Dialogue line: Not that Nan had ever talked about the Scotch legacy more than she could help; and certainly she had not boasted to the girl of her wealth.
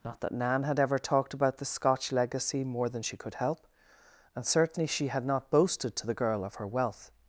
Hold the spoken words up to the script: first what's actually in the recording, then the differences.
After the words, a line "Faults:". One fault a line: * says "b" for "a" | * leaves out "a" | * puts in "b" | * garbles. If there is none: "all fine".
Not that Nan had ever talked about the Scotch legacy more than she could help; and certainly she had not boasted to the girl of her wealth.
Faults:
all fine